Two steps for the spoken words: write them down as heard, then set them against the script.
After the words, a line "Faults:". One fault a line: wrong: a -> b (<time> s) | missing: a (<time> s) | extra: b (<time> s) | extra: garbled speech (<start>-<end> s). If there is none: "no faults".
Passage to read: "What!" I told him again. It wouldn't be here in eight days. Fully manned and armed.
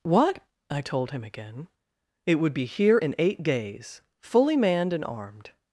"What!" I told him again. It would be here in eight days. Fully manned and armed.
Faults:
wrong: wouldn't -> would (2.4 s)